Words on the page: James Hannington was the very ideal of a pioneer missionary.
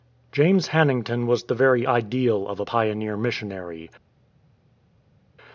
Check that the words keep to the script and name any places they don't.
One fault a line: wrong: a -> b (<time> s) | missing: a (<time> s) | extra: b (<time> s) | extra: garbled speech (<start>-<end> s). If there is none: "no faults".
no faults